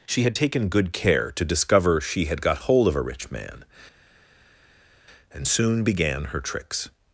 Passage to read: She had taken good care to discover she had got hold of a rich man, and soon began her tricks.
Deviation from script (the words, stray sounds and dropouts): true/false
false